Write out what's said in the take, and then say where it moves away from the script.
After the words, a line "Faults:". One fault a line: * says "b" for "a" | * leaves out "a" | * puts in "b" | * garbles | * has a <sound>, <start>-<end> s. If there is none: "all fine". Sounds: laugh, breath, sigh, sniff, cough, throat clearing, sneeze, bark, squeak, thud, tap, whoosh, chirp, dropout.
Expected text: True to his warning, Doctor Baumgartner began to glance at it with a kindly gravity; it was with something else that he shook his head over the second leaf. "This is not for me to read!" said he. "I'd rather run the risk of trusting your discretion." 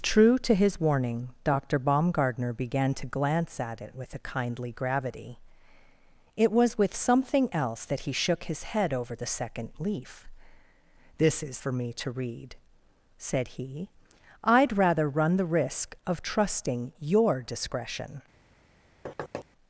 True to his warning, Doctor Baumgartner began to glance at it with a kindly gravity; it was with something else that he shook his head over the second leaf. "This is for me to read!" said he. "I'd rather run the risk of trusting your discretion."
Faults:
* leaves out "not"
* has a thud, 19.1-19.5 s